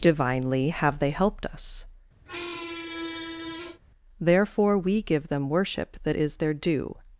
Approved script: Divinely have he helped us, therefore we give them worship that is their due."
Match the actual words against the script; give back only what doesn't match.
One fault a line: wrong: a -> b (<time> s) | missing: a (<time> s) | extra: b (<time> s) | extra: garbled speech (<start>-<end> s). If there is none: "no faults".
wrong: he -> they (1.0 s)